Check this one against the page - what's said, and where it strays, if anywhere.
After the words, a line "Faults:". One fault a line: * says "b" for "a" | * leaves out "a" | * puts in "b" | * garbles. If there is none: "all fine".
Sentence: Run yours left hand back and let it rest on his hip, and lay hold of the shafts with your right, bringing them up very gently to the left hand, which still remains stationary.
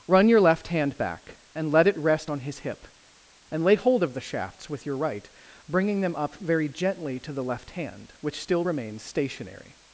Run your left hand back and let it rest on his hip, and lay hold of the shafts with your right, bringing them up very gently to the left hand, which still remains stationary.
Faults:
* says "your" for "yours"